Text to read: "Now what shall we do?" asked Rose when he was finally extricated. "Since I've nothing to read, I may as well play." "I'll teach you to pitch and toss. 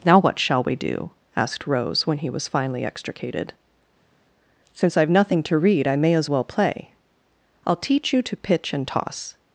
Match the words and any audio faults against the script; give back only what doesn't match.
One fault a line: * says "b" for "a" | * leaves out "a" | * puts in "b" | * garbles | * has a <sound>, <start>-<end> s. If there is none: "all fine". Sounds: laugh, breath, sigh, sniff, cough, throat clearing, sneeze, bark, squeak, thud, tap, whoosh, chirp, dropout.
all fine